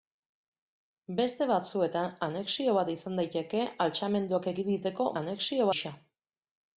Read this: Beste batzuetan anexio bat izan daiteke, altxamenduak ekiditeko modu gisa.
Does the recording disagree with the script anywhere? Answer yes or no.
yes